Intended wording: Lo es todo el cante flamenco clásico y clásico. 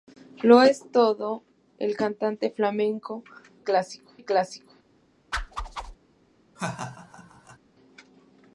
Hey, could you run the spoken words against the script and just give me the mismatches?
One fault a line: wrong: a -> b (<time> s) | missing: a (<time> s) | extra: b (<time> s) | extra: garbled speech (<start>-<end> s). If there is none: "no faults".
no faults